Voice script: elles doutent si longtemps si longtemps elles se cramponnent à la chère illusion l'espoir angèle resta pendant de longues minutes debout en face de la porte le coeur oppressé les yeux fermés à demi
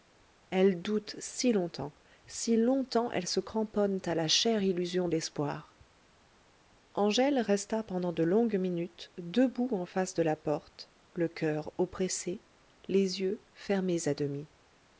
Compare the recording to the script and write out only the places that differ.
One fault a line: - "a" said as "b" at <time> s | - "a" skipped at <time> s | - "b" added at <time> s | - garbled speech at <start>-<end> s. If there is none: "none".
none